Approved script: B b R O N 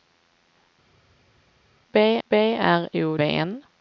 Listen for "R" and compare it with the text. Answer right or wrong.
right